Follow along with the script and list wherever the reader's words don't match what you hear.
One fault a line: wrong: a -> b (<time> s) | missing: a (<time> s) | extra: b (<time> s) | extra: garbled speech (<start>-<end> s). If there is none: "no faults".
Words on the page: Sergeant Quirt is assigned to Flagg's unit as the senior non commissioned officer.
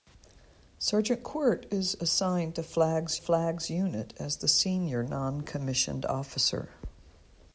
extra: Flagg's (3.2 s)